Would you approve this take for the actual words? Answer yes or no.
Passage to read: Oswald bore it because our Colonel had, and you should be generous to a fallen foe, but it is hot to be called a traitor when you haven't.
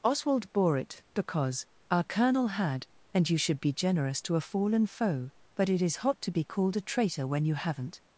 yes